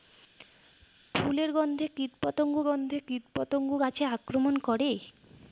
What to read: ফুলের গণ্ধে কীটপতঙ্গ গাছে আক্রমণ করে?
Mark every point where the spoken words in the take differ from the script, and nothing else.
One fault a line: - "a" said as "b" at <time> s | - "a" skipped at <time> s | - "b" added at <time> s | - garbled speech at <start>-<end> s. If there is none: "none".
- "গণ্ধে কীটপতঙ্গ" added at 2.7 s